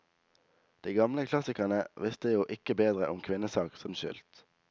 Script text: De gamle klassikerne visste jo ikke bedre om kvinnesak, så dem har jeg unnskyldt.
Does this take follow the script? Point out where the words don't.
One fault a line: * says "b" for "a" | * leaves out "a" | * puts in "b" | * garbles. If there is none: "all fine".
* leaves out "dem har jeg"